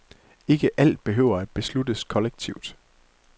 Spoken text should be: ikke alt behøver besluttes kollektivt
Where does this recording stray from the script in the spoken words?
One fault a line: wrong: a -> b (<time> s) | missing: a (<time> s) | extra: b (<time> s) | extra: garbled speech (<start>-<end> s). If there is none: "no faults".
extra: at (1.4 s)